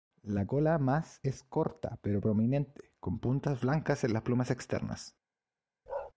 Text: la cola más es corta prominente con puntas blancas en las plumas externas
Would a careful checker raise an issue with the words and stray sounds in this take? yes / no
yes